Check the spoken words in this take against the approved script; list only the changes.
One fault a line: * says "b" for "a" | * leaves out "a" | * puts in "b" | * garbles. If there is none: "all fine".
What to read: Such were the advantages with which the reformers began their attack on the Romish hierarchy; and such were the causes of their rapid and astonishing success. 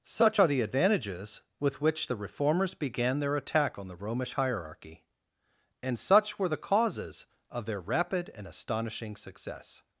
* says "are" for "were"